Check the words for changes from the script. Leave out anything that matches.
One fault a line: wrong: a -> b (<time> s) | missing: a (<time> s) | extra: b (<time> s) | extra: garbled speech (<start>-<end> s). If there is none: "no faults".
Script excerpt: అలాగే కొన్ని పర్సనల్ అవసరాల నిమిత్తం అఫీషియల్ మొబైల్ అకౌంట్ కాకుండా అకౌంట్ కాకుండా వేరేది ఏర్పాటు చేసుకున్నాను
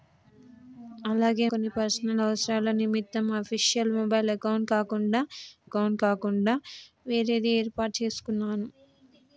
no faults